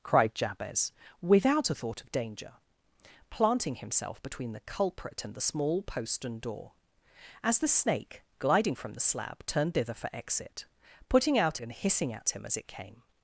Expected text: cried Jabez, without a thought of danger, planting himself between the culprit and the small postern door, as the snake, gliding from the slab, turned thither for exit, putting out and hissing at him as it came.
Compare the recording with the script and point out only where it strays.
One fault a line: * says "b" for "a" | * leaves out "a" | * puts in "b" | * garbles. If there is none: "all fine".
all fine